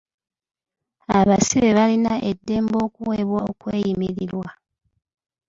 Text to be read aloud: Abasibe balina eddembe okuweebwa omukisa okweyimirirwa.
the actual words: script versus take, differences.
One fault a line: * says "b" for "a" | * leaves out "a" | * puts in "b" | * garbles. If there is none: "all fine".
* leaves out "omukisa"